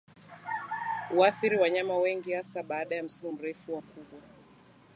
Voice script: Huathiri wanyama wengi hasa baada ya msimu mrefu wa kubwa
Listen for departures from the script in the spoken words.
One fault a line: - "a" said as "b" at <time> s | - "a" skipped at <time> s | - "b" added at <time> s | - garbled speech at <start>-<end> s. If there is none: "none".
none